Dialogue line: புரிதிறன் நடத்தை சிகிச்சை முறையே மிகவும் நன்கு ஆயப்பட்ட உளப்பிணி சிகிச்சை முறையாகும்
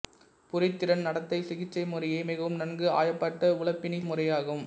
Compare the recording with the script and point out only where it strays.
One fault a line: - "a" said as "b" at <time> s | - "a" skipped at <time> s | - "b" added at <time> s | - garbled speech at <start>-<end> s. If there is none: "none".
- "சிகிச்சை" skipped at 4.0 s